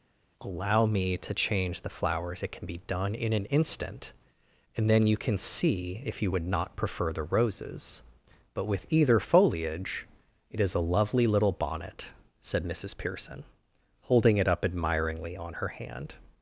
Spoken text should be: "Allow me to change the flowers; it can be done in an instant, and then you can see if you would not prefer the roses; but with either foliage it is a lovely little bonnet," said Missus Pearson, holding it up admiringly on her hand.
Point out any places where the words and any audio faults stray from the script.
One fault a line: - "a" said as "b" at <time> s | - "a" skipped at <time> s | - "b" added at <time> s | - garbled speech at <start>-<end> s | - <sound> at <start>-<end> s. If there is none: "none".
none